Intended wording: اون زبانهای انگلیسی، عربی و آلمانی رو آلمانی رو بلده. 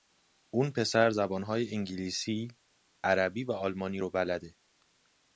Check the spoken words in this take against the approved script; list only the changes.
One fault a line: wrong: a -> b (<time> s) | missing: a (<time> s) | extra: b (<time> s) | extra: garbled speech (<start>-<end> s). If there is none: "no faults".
extra: پسر (0.7 s)
missing: آلمانی رو (4.1 s)